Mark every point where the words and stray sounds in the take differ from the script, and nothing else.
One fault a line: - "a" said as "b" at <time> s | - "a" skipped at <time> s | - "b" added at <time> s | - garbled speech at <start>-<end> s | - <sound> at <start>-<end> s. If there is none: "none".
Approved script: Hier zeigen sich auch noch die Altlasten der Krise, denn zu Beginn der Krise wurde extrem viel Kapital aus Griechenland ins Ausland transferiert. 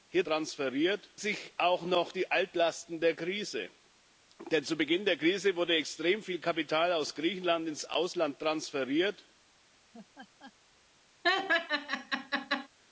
- "zeigen" said as "transferiert" at 0.2 s
- laugh at 9.9-10.5 s
- laugh at 11.2-12.7 s